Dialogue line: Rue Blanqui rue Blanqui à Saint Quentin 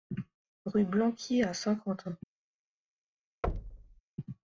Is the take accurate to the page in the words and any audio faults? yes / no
no